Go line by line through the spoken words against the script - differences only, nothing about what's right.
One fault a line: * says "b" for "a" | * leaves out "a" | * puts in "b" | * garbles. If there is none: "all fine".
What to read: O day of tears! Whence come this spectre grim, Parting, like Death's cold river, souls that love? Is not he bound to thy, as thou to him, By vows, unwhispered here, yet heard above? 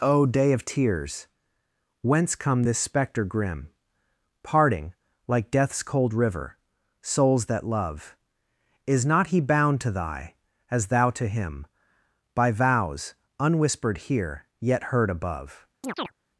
all fine